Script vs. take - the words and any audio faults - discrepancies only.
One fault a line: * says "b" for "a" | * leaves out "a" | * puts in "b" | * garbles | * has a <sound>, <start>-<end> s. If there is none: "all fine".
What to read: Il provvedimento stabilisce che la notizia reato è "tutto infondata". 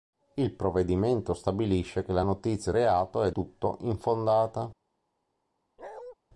* has a bark, 5.8-6.2 s